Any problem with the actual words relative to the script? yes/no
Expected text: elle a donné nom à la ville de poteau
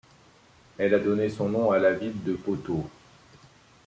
yes